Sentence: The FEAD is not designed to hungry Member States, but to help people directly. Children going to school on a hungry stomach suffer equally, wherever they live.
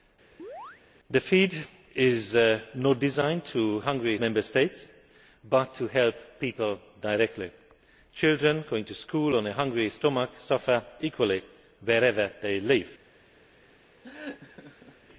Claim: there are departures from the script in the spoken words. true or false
false